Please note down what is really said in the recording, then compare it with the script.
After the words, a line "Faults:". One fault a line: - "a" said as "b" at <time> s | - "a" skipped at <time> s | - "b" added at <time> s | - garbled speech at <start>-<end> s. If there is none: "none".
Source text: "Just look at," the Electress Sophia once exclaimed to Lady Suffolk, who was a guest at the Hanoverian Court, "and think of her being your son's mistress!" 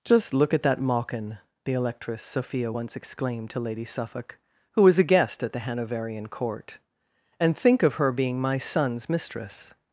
"Just look at that mawkin," the Electress Sophia once exclaimed to Lady Suffolk, who was a guest at the Hanoverian Court, "and think of her being my son's mistress!"
Faults:
- "that mawkin" added at 0.6 s
- "your" said as "my" at 8.4 s